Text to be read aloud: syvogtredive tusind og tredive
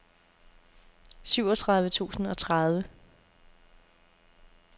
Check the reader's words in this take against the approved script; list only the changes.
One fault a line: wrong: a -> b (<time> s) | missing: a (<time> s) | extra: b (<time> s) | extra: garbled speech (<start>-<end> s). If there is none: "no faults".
no faults